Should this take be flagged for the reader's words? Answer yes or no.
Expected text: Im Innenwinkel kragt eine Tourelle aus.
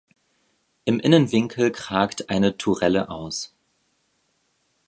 no